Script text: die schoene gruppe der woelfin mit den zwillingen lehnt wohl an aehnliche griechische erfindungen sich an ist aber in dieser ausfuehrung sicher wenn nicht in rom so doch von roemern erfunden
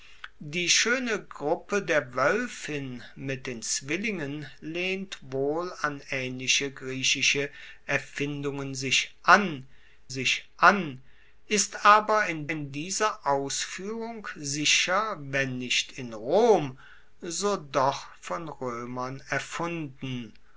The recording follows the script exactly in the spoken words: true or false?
false